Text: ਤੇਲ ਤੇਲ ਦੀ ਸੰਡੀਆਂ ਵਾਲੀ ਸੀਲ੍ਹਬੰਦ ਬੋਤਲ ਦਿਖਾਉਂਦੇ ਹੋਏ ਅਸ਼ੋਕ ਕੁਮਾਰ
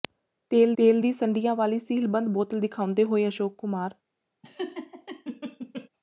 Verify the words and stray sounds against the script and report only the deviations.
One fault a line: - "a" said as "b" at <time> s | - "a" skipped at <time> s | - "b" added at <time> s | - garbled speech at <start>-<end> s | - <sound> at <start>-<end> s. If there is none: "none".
- laugh at 4.4-5.9 s